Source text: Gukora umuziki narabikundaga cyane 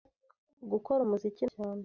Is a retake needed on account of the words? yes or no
yes